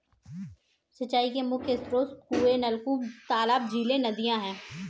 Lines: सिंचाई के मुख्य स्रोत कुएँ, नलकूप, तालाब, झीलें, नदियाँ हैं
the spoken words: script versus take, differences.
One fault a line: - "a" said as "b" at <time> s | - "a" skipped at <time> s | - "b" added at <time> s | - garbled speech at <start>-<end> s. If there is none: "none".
none